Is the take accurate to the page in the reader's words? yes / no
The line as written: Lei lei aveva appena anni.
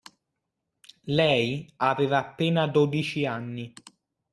no